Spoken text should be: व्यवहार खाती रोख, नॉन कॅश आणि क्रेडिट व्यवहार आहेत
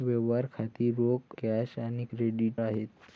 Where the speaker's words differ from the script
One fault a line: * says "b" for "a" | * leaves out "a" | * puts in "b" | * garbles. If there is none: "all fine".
* leaves out "नॉन"
* leaves out "व्यवहार"